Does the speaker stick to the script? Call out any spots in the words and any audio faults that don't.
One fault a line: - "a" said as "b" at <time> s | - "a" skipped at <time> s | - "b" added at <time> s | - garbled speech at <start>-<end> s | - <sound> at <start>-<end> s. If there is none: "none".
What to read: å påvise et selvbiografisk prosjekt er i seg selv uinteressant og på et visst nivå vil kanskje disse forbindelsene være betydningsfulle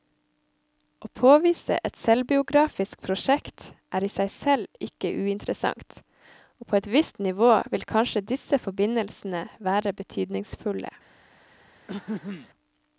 - "ikke" added at 4.9 s
- throat clearing at 11.9-12.5 s